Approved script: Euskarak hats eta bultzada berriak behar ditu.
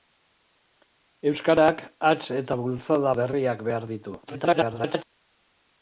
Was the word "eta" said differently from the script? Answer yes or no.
no